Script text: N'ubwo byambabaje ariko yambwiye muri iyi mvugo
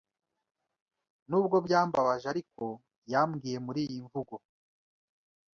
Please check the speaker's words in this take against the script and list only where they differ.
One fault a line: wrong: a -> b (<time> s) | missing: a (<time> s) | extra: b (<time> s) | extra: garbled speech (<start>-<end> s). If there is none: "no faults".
no faults